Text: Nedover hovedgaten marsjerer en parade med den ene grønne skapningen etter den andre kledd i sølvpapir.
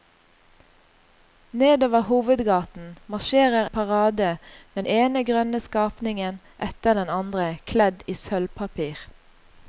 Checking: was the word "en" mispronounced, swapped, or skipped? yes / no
yes